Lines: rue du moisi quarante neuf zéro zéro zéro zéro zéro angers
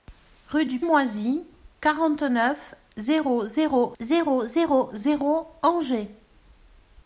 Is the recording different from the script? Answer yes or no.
no